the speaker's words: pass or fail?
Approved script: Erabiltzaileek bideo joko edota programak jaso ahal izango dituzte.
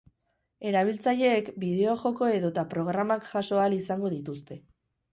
pass